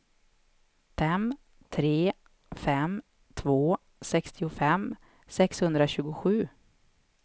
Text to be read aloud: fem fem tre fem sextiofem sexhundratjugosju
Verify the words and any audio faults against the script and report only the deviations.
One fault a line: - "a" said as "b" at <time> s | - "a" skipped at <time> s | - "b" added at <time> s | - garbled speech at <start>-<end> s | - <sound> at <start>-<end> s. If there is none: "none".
- "fem" skipped at 1.3 s
- "två" added at 3.3 s